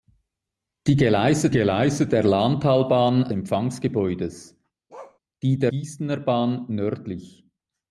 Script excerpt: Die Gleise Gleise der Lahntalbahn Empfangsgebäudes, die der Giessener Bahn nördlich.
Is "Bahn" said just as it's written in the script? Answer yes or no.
yes